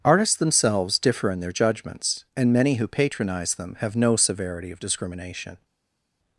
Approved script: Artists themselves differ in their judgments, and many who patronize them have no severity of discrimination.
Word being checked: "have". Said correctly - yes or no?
yes